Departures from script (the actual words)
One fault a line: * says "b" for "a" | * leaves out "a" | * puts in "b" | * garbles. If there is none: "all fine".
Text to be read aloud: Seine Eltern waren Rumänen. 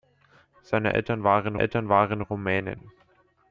* puts in "Eltern waren"